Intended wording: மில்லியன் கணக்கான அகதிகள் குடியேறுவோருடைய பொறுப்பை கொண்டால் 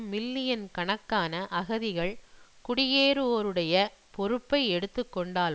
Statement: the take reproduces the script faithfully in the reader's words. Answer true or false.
false